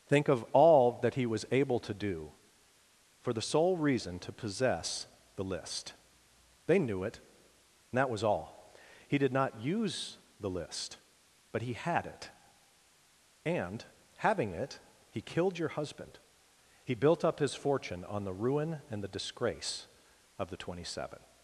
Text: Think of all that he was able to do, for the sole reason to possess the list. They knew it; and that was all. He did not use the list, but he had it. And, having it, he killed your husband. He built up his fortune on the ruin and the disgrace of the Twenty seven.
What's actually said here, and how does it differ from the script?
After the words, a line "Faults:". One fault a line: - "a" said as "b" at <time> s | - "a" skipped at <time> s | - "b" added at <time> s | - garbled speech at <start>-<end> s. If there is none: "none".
Think of all that he was able to do, for the sole reason to possess the list. They knew it; and that was all. He did not use the list, but he had it. And, having it, he killed your husband. He built up his fortune on the ruin and the disgrace of the Twenty seven.
Faults:
none